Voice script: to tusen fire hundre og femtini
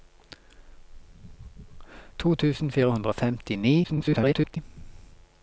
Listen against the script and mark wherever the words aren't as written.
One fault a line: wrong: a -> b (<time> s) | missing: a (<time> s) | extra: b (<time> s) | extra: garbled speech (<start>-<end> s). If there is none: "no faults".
extra: garbled speech (3.8-4.6 s)